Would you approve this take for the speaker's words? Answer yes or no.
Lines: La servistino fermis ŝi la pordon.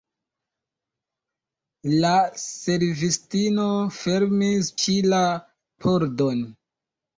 yes